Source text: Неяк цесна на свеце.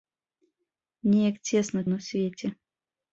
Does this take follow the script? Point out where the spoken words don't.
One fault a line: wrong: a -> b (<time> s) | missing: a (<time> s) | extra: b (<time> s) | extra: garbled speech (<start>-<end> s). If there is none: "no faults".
no faults